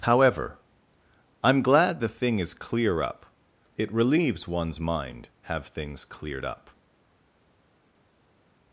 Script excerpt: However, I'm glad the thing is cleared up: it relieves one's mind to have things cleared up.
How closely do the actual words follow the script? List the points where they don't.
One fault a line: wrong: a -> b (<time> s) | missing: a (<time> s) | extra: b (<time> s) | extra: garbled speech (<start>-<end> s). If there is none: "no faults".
wrong: cleared -> clear (2.5 s)
missing: to (5.3 s)